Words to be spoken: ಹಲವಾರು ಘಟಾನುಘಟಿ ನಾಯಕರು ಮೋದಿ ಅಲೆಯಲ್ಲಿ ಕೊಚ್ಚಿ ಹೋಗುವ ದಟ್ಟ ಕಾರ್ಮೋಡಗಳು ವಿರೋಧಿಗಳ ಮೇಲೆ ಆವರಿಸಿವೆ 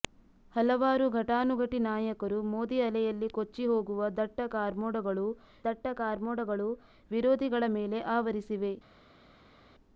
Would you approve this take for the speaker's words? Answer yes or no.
no